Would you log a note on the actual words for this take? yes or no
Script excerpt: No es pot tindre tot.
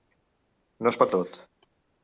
yes